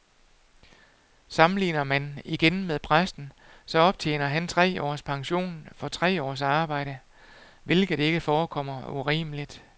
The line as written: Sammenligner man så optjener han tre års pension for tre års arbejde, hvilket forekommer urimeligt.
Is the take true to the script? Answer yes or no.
no